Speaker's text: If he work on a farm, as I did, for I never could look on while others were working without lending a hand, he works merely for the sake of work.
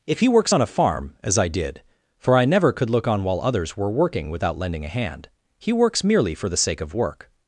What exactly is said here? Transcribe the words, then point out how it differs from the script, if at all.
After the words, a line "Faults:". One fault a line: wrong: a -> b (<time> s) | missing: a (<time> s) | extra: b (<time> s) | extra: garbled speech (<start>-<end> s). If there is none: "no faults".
If he works on a farm, as I did, for I never could look on while others were working without lending a hand, he works merely for the sake of work.
Faults:
wrong: work -> works (0.3 s)